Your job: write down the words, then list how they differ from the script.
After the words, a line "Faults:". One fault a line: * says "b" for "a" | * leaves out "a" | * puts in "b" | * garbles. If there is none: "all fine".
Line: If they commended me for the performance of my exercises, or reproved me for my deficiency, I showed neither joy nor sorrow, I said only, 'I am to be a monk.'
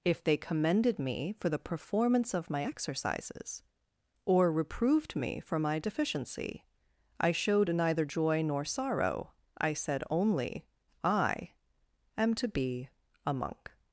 If they commended me for the performance of my exercises, or reproved me for my deficiency, I showed neither joy nor sorrow, I said only, 'I am to be a monk.'
Faults:
all fine